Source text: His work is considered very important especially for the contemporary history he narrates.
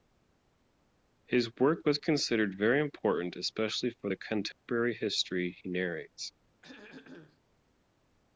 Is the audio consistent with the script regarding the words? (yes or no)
no